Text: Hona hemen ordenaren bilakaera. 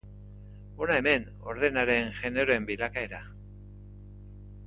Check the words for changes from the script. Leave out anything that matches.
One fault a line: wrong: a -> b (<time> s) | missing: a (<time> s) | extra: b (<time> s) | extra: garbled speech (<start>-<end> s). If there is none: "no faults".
extra: generoen (2.2 s)